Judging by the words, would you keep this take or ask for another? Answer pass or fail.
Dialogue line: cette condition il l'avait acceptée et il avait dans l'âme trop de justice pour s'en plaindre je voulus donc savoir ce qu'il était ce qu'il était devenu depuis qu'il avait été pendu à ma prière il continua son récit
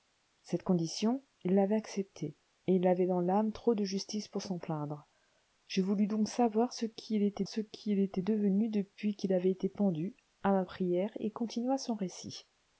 pass